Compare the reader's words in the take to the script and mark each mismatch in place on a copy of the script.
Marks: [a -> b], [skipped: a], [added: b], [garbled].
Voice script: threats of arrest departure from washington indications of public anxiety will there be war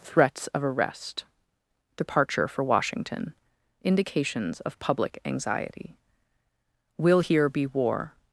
threats of arrest departure [from -> for] washington indications of public anxiety will [there -> here] be war